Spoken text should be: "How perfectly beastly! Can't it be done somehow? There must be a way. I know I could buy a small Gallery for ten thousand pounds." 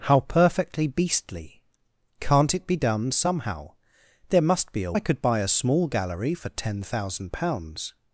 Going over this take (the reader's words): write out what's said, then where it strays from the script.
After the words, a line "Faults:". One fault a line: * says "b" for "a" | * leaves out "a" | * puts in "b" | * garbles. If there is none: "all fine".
"How perfectly beastly! Can't it be done somehow? There must be a I could buy a small Gallery for ten thousand pounds."
Faults:
* leaves out "way I know"